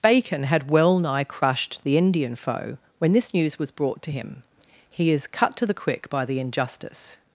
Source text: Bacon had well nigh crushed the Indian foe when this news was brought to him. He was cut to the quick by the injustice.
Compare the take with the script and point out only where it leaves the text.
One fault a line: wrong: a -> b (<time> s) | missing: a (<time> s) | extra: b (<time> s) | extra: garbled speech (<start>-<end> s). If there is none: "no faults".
wrong: was -> is (5.1 s)